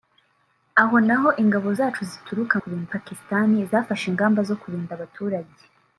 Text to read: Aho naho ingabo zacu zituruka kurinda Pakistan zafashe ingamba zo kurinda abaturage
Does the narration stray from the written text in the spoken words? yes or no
no